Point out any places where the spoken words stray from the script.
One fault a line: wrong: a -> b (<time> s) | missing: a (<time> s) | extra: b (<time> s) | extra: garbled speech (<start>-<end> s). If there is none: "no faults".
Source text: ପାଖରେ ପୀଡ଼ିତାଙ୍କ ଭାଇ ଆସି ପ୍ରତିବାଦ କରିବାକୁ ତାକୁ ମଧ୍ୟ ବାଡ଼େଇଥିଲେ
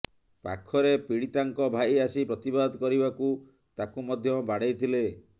no faults